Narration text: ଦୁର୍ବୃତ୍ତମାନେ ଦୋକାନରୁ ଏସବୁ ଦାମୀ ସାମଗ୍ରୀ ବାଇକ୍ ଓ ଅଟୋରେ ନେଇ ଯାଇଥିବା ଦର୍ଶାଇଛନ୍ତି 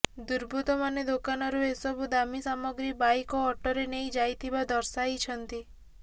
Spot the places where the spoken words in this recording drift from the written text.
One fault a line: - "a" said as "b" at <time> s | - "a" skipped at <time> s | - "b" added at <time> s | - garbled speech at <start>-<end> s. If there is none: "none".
none